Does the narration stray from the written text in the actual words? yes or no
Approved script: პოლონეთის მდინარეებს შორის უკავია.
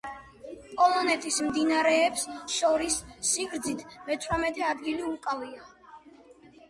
yes